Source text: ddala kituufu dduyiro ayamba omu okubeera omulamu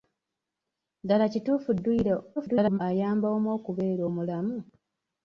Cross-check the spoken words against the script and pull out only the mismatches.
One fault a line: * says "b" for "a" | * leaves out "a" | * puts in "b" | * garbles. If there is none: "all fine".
* garbles